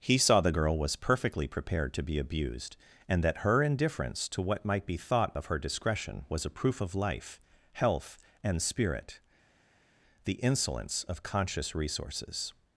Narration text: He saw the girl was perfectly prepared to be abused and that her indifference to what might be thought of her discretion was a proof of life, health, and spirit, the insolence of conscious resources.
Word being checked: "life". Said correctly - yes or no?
yes